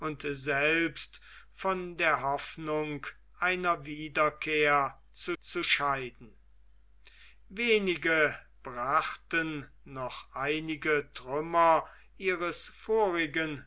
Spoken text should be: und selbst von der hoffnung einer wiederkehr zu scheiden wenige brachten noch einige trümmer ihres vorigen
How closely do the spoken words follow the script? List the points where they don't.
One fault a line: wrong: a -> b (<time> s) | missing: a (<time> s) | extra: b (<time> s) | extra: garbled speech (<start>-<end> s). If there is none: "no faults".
extra: zu (5.4 s)